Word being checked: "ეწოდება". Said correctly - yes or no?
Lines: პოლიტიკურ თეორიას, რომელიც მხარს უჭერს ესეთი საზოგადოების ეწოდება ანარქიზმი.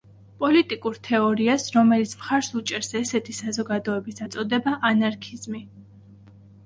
yes